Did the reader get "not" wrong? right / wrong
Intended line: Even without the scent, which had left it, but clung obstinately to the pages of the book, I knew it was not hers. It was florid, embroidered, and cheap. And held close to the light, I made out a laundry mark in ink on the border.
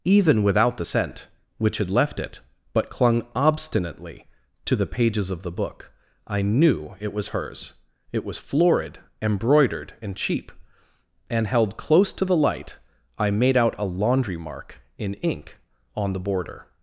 wrong